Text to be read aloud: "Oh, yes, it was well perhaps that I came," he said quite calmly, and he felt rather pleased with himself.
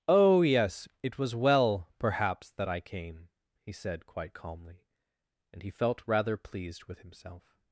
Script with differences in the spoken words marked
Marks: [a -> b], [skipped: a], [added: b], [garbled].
"Oh, yes, it was well perhaps that I came," he said quite calmly, and he felt rather pleased with himself.